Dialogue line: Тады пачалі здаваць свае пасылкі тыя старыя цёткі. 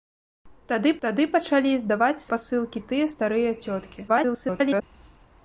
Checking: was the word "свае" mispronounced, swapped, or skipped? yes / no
yes